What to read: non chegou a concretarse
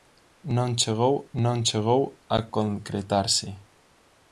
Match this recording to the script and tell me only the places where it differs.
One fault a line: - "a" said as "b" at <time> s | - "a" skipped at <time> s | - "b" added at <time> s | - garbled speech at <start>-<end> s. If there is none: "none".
- "non chegou" added at 1.4 s